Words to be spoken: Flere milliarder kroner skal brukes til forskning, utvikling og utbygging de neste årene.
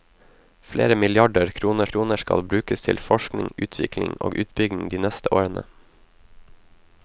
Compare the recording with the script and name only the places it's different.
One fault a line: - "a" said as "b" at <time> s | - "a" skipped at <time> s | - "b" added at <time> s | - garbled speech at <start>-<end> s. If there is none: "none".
- "kroner" added at 1.9 s